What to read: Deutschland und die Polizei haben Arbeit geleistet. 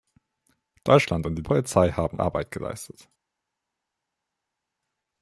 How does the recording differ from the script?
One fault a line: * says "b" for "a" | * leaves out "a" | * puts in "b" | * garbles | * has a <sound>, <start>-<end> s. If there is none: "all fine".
all fine